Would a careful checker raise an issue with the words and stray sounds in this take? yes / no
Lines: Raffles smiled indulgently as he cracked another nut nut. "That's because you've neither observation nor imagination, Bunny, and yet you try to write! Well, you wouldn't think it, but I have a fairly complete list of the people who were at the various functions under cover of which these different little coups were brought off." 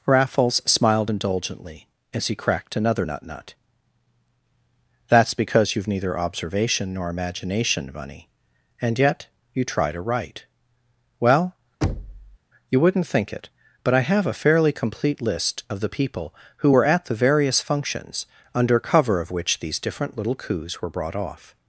yes